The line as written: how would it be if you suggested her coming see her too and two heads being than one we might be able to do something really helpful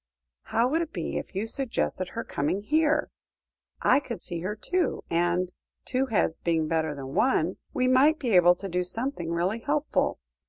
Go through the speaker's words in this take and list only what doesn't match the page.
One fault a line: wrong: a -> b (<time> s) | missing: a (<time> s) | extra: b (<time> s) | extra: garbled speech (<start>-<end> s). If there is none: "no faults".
extra: here i could (2.6 s)
extra: better (6.7 s)